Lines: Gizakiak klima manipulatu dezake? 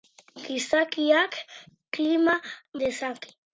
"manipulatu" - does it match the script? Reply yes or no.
no